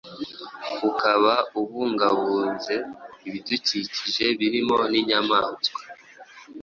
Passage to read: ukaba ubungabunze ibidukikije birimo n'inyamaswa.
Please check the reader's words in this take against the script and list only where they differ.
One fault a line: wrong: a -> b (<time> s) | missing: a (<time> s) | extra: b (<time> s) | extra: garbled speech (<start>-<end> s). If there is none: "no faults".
no faults